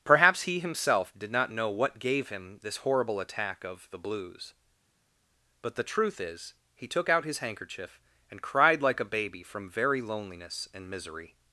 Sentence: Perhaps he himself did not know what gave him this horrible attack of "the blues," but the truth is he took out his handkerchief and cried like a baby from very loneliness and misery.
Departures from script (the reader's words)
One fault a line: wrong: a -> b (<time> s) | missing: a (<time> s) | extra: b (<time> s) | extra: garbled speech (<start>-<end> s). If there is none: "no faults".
no faults